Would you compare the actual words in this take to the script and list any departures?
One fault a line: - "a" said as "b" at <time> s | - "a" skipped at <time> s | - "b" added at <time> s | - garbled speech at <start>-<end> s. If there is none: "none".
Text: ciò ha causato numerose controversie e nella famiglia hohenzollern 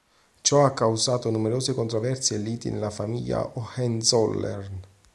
- "liti" added at 2.4 s